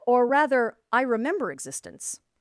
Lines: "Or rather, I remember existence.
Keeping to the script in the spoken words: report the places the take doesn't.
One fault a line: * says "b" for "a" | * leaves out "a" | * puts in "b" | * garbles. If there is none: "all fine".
all fine